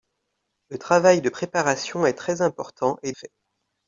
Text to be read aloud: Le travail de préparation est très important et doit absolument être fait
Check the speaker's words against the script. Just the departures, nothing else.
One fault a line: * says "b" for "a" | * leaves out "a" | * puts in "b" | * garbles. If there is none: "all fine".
* leaves out "doit absolument être"